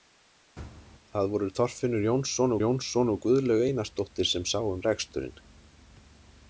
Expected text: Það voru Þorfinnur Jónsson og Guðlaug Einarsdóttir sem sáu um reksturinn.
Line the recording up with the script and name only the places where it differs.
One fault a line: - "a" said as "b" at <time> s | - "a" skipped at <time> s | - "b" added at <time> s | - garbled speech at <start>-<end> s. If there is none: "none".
- "Jónsson" added at 2.6 s